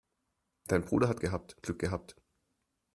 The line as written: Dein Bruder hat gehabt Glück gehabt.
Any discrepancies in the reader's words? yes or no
no